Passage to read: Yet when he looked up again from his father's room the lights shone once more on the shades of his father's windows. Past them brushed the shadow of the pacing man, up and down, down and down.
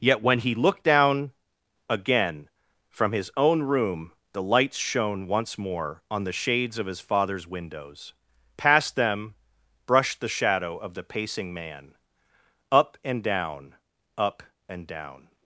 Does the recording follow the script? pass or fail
fail